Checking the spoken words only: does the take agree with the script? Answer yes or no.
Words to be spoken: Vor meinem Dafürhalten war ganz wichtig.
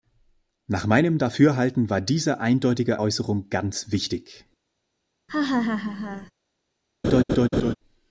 no